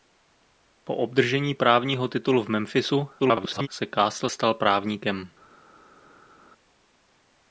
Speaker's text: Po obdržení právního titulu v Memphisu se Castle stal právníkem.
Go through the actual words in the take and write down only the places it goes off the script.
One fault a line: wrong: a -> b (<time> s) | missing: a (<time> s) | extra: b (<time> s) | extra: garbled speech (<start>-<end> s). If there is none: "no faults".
extra: garbled speech (3.2-3.7 s)